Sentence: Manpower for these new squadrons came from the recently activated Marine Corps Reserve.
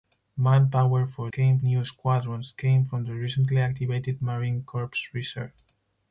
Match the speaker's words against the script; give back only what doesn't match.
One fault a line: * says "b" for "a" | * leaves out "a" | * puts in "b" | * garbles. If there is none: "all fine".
* says "came" for "these"